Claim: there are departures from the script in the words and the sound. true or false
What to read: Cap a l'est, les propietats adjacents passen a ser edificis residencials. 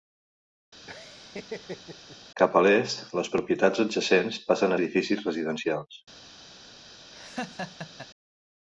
true